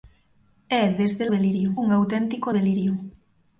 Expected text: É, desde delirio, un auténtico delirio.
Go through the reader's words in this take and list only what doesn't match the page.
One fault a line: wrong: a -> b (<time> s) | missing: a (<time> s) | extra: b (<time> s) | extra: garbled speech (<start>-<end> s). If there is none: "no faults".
no faults